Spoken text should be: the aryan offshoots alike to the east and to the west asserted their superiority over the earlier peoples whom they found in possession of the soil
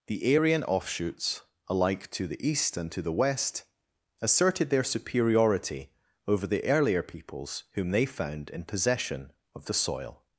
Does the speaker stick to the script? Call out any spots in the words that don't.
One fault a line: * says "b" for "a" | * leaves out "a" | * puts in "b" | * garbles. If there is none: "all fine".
all fine